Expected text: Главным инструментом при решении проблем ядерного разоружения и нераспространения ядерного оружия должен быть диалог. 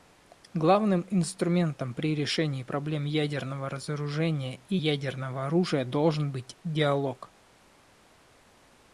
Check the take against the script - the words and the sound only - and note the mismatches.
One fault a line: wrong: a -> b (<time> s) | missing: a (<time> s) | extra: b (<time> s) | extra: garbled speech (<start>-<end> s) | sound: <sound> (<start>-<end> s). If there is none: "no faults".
missing: нераспространения (4.8 s)